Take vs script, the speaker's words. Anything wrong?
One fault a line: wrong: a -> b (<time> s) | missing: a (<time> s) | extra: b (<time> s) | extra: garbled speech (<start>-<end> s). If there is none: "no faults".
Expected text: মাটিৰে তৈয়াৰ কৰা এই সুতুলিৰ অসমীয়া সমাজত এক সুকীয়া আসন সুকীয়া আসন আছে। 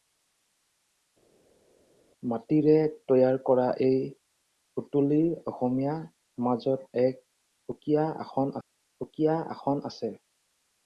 no faults